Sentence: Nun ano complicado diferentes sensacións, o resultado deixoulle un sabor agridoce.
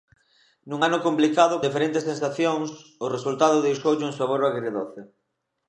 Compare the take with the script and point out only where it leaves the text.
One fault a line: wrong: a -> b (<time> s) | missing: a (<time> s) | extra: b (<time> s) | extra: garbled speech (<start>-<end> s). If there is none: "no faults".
no faults